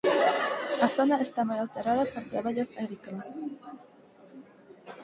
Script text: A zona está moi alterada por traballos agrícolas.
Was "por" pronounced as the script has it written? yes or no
yes